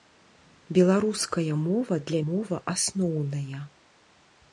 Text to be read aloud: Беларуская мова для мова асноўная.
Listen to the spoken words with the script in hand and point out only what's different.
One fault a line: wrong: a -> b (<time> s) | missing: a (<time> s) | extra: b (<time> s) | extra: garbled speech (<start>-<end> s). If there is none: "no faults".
no faults